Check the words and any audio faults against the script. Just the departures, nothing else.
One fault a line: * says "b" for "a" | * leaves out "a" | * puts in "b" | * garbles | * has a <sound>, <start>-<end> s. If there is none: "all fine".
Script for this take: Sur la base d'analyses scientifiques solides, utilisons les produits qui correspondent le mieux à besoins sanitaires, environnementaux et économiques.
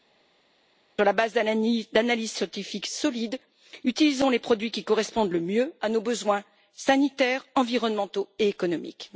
* puts in "nos"